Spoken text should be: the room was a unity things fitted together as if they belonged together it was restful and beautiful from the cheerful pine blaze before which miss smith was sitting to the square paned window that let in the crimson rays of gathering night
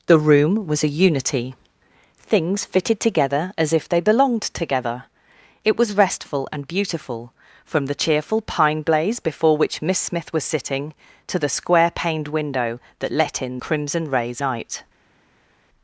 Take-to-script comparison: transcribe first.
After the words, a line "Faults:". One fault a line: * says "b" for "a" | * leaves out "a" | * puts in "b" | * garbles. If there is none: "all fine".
the room was a unity things fitted together as if they belonged together it was restful and beautiful from the cheerful pine blaze before which miss smith was sitting to the square paned window that let in crimson rays night
Faults:
* leaves out "the"
* leaves out "of gathering"